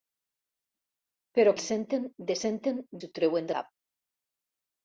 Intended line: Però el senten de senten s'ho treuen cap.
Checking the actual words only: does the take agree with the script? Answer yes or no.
yes